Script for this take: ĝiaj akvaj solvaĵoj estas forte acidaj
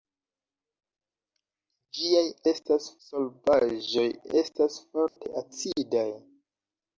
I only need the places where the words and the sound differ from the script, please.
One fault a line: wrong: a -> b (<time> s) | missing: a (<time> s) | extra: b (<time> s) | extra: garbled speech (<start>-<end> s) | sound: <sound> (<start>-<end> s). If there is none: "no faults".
wrong: akvaj -> estas (2.5 s)
sound: dropout (5.1-5.2 s)